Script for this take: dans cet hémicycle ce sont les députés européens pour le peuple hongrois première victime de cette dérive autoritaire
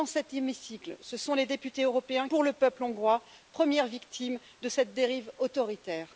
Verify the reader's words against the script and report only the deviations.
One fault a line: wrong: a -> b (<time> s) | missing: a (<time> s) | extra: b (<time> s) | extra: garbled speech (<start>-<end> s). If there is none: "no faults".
no faults